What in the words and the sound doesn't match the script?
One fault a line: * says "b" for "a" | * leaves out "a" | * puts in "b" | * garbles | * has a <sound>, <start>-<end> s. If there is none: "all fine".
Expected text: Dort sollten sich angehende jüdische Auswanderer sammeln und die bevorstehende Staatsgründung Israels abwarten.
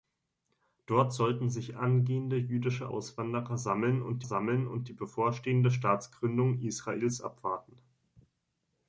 * puts in "sammeln und"